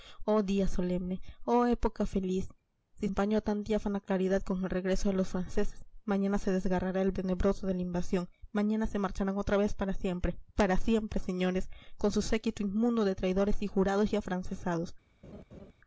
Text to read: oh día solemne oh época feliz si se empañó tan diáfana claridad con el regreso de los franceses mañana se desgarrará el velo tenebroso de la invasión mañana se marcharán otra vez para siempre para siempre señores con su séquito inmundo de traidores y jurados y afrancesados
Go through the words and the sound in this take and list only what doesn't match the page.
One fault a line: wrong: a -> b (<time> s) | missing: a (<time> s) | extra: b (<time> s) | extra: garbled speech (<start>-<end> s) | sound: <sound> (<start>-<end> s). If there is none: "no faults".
missing: se (3.1 s)
missing: velo (7.1 s)
sound: laugh (15.2-15.7 s)